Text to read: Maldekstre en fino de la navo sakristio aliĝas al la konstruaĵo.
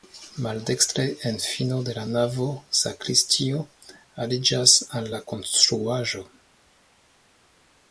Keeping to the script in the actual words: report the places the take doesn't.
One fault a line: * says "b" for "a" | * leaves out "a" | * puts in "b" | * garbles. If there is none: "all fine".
all fine